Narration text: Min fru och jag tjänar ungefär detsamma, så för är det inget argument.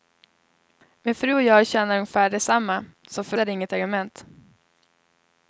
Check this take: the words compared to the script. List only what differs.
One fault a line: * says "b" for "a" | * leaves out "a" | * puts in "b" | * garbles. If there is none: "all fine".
all fine